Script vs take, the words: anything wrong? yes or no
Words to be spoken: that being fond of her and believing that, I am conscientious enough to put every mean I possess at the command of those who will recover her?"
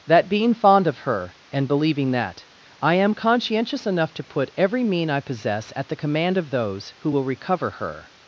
no